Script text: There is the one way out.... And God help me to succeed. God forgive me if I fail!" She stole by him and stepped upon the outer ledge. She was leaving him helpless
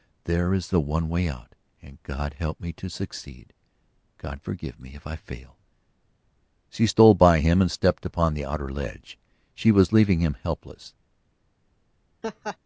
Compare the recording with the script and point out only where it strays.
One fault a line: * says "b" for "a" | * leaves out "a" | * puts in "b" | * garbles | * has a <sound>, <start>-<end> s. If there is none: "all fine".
* has a laugh, 12.2-12.6 s